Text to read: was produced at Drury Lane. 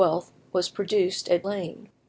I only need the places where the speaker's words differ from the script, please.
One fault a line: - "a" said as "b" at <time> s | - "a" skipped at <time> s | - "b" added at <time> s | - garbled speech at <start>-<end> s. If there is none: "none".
- "Drury" skipped at 1.4 s